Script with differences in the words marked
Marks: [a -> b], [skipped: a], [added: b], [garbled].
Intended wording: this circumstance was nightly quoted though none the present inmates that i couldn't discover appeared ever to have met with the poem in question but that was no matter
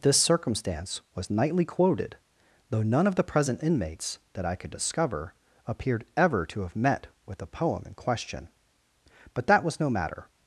this circumstance was nightly quoted though none [added: of] the present inmates that i [couldn't -> could] discover appeared ever to have met with the poem in question but that was no matter